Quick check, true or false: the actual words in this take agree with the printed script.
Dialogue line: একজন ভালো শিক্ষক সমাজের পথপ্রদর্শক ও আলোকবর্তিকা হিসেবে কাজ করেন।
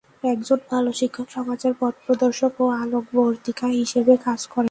true